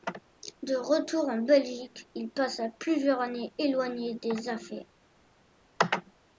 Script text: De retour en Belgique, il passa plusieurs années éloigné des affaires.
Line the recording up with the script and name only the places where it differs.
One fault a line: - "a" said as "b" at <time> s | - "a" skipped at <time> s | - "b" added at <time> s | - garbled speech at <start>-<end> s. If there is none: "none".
none